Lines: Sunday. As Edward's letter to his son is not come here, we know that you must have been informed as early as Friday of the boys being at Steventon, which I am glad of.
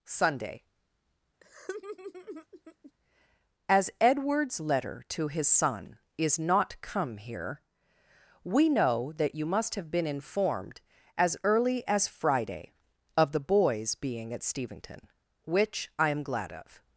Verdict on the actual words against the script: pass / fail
pass